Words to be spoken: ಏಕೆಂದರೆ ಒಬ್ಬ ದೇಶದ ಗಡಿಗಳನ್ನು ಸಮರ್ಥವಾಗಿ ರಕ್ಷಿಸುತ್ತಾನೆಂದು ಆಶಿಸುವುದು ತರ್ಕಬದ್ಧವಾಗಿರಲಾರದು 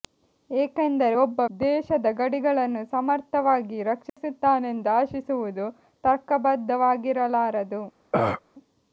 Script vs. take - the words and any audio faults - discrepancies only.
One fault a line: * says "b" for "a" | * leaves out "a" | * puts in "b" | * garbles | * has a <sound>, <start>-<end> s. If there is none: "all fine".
* has a dropout, 4.1-4.2 s
* has a throat clearing, 8.1-8.4 s